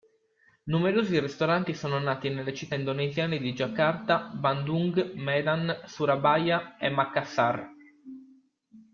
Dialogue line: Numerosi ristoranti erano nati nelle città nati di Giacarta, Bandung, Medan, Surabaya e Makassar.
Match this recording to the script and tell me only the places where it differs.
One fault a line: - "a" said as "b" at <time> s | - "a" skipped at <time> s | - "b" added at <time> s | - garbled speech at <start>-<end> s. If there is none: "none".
- "erano" said as "sono" at 1.8 s
- "nati" said as "indonesiane" at 2.7 s